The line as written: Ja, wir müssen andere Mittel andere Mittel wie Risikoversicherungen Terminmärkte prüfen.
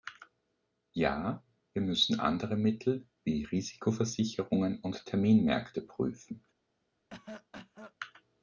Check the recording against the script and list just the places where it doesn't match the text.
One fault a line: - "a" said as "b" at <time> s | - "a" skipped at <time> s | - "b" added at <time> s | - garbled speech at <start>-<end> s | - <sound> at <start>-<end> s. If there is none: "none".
- "andere Mittel" skipped at 3.1 s
- "und" added at 4.8 s
- cough at 7.1-7.9 s